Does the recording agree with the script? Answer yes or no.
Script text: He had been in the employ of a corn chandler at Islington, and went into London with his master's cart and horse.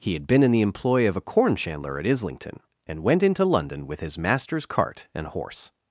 yes